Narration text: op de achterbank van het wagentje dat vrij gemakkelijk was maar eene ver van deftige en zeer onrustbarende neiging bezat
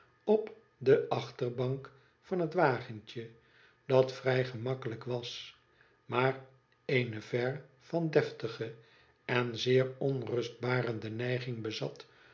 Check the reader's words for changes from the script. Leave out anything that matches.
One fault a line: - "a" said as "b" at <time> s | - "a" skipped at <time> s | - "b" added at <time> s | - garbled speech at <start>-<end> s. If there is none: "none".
none